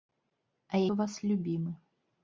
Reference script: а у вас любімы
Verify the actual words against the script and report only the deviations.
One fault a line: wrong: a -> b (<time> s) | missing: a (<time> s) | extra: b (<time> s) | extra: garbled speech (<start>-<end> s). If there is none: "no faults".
no faults